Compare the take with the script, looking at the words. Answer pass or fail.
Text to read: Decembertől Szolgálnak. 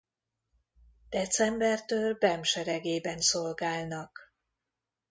fail